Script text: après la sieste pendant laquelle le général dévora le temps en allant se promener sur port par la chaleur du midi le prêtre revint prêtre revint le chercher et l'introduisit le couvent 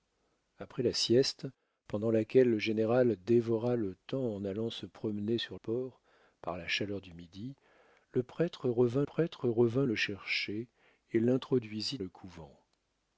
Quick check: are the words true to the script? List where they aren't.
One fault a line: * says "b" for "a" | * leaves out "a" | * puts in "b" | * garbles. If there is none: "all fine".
all fine